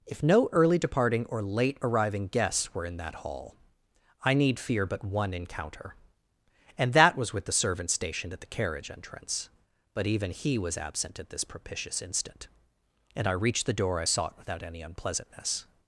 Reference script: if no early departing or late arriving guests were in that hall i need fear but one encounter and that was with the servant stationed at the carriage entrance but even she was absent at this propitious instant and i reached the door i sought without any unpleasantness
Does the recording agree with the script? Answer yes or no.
no